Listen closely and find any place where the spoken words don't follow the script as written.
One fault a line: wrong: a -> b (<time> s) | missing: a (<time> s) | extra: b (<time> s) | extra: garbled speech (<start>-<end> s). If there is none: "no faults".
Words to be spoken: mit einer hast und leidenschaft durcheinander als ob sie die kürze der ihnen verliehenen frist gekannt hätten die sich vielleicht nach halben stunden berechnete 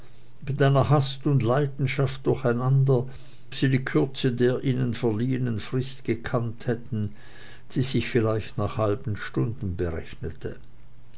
missing: als ob (3.0 s)